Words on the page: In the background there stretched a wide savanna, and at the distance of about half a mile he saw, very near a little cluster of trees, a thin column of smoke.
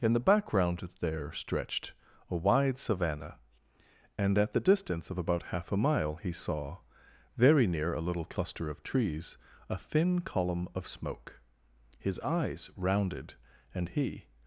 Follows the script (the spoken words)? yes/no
no